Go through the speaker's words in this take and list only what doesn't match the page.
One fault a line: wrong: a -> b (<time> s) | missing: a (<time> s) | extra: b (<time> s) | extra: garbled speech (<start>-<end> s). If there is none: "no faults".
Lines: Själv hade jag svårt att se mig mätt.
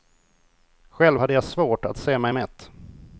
no faults